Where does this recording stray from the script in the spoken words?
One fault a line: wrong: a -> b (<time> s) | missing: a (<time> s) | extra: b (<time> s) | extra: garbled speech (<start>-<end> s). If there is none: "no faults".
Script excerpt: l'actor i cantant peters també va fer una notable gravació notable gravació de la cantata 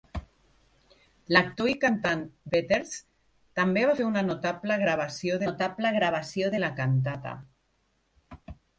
no faults